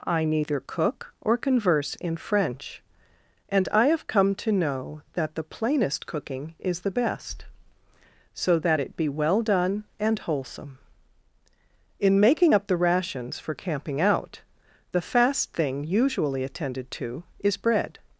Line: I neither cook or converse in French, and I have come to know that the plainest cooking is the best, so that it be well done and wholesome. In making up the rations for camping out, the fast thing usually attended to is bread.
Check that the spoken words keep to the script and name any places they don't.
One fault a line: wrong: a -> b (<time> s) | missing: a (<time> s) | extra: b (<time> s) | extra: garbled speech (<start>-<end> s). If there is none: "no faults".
no faults